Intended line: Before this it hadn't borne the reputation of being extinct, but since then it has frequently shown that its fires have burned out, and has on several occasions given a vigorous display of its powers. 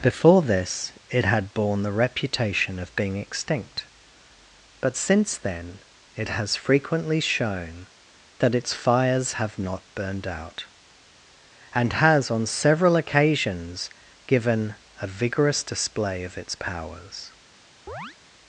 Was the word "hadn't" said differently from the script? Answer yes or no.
yes